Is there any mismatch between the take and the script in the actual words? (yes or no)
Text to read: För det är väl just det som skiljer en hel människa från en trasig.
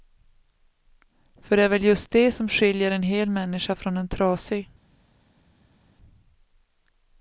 no